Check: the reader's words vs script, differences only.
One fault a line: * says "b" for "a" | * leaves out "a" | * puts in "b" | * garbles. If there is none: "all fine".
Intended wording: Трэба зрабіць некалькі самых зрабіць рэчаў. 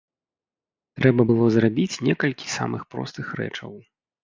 * puts in "было"
* says "простых" for "зрабіць"